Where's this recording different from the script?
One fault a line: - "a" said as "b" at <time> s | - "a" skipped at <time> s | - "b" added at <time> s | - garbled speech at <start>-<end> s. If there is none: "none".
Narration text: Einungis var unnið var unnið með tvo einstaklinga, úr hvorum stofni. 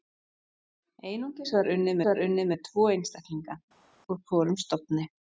none